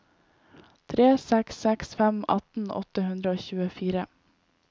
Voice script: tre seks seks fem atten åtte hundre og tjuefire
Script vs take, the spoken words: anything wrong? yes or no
no